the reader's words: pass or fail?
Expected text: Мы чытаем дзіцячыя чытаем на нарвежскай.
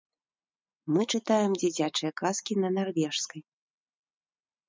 fail